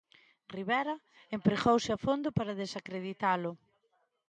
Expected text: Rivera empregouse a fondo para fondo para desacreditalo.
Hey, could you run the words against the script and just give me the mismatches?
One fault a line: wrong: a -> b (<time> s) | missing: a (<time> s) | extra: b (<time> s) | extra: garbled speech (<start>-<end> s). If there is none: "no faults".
missing: fondo para (2.6 s)